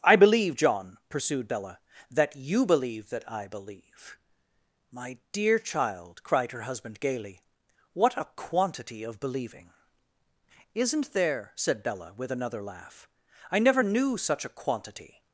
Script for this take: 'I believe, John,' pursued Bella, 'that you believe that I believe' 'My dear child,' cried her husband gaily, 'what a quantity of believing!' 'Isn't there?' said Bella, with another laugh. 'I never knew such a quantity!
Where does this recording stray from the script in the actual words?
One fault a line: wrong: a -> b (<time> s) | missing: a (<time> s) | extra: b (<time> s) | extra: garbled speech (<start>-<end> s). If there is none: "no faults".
no faults